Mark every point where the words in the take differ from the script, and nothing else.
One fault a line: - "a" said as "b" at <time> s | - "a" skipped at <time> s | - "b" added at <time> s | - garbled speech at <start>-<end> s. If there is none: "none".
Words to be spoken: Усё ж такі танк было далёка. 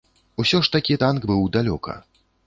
- "было" said as "быў" at 1.3 s